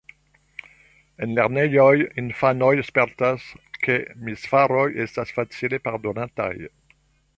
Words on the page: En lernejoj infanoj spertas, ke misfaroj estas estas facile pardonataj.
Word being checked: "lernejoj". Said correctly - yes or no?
yes